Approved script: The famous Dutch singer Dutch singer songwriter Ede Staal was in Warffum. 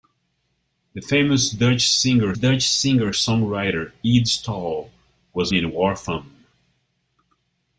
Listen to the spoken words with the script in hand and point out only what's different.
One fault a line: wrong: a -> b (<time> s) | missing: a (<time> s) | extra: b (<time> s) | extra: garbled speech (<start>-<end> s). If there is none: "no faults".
no faults